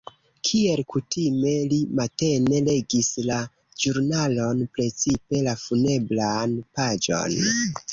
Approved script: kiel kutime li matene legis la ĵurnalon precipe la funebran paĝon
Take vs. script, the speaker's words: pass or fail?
pass